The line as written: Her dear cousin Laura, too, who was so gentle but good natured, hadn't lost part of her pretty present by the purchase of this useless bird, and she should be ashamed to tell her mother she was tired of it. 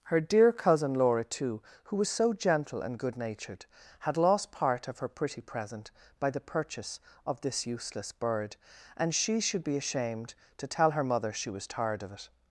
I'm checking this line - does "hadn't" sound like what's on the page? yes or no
no